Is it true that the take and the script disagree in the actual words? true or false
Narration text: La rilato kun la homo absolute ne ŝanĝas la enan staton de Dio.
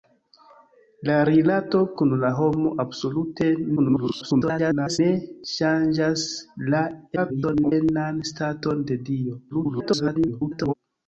true